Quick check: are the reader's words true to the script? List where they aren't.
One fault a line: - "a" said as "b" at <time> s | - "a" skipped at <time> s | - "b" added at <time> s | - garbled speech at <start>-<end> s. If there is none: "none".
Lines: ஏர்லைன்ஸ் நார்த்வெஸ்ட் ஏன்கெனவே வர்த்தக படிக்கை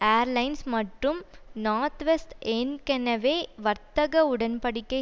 - "மற்றும்" added at 0.7 s
- "உடன்" added at 4.3 s